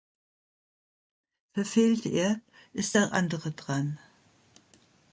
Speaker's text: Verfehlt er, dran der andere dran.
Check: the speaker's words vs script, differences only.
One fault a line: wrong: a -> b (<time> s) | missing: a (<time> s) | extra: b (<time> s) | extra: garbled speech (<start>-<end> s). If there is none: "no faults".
wrong: dran -> ist (2.7 s)